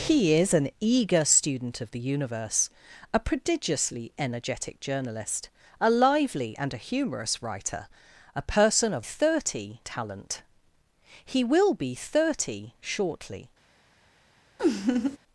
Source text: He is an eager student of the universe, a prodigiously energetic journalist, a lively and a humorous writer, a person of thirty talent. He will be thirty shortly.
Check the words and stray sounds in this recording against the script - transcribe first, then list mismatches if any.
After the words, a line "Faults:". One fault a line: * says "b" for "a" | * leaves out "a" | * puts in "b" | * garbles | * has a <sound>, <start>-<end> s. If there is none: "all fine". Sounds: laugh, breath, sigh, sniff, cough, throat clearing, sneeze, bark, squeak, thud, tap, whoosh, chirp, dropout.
He is an eager student of the universe, a prodigiously energetic journalist, a lively and a humorous writer, a person of thirty talent. He will be thirty shortly.
Faults:
* has a laugh, 14.6-15.2 s